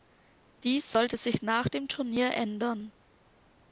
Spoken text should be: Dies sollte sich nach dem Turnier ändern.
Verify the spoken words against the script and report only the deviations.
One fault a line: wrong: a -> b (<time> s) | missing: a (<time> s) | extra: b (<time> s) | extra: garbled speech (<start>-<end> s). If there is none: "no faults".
no faults